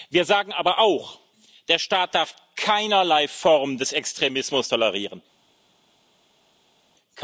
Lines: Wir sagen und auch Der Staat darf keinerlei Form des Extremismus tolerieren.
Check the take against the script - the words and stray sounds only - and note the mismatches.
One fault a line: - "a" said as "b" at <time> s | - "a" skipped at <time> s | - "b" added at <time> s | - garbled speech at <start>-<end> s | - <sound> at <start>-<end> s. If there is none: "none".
- "und" said as "aber" at 0.5 s